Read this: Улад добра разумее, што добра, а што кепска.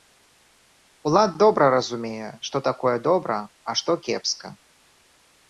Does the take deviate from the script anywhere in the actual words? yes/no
yes